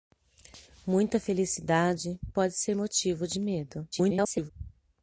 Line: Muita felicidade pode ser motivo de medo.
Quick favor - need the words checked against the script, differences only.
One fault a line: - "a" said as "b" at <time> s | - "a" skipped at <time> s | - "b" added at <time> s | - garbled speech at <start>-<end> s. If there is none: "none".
- garbled speech at 3.9-4.5 s